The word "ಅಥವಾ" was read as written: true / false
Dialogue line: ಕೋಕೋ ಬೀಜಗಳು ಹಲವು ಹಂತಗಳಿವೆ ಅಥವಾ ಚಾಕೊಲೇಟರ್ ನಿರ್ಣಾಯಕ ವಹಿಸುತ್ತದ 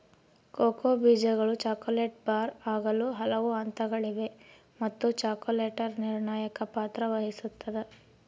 false